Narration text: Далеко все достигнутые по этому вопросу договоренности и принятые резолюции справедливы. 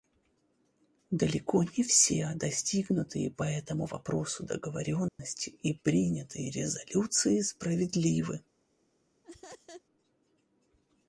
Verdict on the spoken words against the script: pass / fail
fail